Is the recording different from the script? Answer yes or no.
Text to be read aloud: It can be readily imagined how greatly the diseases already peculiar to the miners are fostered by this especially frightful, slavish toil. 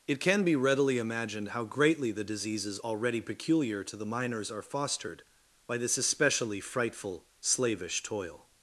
no